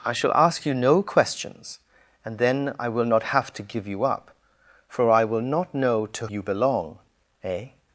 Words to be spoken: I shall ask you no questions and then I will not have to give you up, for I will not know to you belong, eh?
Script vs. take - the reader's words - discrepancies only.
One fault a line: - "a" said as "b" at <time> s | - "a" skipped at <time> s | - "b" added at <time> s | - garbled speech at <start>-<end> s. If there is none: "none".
none